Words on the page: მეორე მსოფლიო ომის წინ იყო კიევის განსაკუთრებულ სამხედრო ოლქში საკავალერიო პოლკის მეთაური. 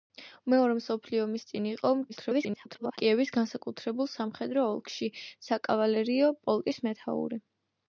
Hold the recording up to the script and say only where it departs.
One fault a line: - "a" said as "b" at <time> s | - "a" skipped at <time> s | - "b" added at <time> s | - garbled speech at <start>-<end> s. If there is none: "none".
- garbled speech at 2.1-3.0 s